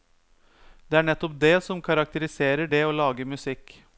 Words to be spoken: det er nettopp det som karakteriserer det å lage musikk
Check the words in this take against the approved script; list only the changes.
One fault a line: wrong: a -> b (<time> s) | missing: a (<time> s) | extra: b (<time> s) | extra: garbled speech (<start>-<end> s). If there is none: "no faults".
no faults